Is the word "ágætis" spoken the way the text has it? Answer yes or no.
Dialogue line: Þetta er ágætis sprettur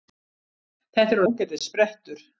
yes